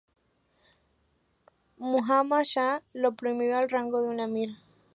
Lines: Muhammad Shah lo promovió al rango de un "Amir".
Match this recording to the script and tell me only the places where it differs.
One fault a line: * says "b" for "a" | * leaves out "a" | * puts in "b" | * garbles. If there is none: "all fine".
all fine